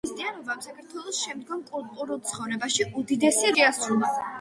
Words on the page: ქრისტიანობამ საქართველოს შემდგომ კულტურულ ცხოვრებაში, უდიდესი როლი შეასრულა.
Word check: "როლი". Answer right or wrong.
wrong